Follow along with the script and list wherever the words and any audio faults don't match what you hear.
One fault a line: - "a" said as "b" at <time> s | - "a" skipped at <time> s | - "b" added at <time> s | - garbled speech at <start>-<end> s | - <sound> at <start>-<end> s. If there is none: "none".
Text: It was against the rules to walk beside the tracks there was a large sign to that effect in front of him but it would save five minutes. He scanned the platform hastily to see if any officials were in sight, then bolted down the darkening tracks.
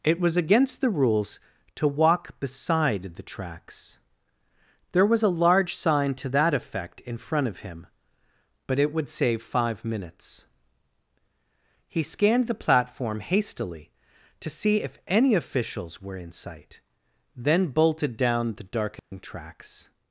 - dropout at 19.0-19.1 s